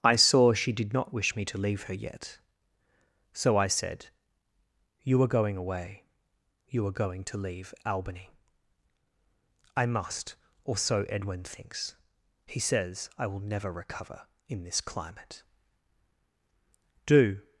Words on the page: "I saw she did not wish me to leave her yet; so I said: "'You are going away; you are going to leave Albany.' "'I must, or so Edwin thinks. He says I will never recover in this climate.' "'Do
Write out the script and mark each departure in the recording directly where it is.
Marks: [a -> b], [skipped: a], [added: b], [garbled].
"I saw she did not wish me to leave her yet; so I said: "'You are going away; you are going to leave Albany.' "'I must, or so Edwin thinks. He says I will never recover in this climate.' "'Do